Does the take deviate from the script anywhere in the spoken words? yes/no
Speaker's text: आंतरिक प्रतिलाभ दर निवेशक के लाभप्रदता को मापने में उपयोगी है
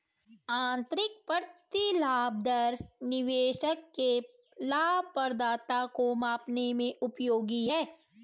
no